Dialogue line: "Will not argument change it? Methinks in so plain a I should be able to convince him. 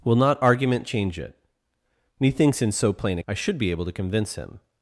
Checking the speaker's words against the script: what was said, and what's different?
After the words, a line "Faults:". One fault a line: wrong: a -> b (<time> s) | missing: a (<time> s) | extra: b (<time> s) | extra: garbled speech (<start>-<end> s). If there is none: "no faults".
"Will not argument change it? Methinks in so plain a I should be able to convince him.
Faults:
no faults